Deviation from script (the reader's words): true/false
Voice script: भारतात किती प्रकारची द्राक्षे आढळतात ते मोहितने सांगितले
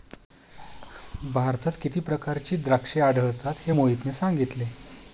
true